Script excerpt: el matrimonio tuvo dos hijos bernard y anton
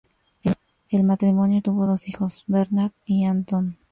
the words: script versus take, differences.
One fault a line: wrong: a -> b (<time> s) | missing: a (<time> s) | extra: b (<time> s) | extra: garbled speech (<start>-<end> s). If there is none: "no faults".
no faults